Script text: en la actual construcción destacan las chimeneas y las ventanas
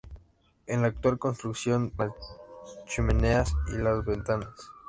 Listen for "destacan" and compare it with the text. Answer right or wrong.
wrong